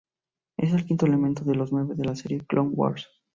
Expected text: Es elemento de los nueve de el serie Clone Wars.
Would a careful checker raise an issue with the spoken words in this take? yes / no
yes